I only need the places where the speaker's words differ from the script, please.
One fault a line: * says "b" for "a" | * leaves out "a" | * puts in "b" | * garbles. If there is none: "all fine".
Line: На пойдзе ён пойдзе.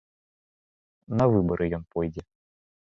* says "выбары" for "пойдзе"